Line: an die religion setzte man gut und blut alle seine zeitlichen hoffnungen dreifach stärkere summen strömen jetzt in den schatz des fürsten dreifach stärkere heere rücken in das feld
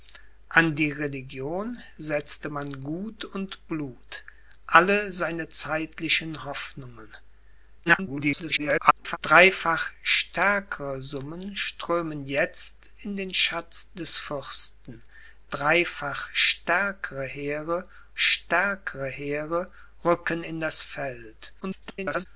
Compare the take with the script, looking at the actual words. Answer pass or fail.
fail